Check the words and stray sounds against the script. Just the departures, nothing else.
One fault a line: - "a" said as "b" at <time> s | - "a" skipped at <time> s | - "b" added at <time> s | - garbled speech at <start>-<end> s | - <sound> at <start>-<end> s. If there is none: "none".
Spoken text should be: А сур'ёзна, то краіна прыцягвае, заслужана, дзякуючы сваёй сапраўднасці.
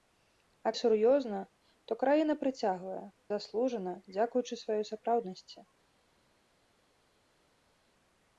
none